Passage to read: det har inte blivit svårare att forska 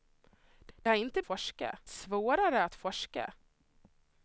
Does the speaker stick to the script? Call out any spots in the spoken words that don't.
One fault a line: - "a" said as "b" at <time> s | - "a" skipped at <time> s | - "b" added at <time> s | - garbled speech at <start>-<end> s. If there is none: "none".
- "det" added at 0.8 s
- "blivit" said as "forska" at 1.2 s